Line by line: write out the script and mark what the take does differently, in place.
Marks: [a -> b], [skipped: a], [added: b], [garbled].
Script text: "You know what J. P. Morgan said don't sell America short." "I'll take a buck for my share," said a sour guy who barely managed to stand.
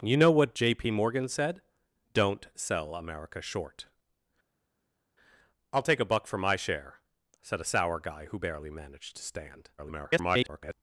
"You know what J. P. Morgan said don't sell America short." "I'll take a buck for my share," said a sour guy who barely managed to stand. [garbled]